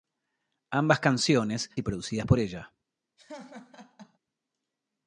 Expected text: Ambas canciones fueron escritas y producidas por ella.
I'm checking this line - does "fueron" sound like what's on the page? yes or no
no